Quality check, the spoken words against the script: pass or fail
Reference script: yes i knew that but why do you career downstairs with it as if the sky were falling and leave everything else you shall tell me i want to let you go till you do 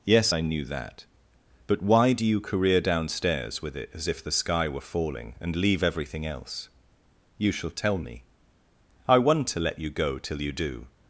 pass